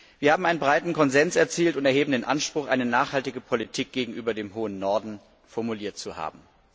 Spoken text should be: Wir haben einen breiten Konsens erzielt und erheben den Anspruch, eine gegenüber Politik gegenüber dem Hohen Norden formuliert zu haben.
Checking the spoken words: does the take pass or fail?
fail